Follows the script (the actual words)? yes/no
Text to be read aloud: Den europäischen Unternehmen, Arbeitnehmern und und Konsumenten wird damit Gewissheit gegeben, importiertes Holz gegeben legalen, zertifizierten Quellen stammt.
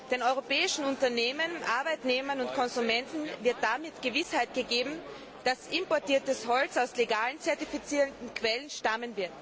no